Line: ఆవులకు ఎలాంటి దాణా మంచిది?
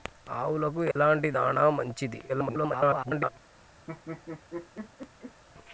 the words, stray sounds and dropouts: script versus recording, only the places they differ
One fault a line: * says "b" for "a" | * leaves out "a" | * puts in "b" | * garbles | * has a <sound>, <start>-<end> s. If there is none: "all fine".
* has a dropout, 0.9-1.0 s
* garbles
* has a laugh, 3.9-5.4 s